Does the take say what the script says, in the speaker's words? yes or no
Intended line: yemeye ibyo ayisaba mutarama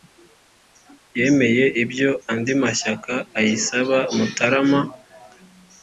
no